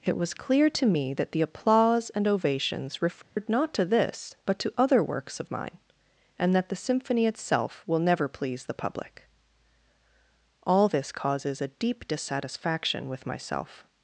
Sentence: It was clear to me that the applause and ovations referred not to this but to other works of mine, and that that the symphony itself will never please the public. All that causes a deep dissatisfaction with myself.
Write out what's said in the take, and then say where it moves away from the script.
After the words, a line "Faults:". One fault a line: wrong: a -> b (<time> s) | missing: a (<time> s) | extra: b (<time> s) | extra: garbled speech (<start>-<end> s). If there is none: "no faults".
It was clear to me that the applause and ovations referred not to this but to other works of mine, and that the symphony itself will never please the public. All this causes a deep dissatisfaction with myself.
Faults:
missing: that (6.7 s)
wrong: that -> this (10.9 s)